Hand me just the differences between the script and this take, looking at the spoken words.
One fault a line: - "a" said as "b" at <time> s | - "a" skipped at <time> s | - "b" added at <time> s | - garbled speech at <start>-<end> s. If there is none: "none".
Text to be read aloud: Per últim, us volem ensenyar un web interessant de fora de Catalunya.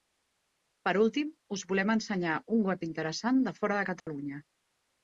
none